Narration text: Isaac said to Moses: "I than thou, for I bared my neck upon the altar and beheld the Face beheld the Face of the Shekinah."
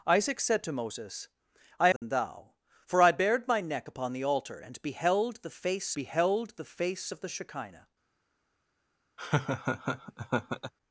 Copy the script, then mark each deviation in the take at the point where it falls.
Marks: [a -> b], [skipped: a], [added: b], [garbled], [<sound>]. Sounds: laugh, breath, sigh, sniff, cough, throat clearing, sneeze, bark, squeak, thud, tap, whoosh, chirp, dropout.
Isaac said to Moses: "I than [dropout] thou, for I bared my neck upon the altar and beheld the Face beheld the Face of the Shekinah." [laugh]